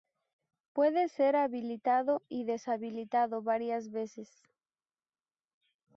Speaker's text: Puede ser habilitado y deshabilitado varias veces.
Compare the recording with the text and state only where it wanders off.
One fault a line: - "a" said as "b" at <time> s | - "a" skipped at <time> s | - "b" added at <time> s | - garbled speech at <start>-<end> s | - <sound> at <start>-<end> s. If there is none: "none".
none